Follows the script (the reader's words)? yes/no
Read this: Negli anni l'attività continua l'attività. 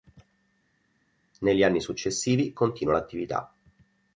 no